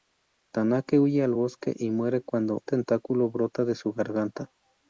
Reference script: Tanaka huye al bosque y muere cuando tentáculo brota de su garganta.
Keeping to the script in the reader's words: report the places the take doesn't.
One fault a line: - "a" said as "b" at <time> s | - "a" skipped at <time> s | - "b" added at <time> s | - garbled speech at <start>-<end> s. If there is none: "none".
none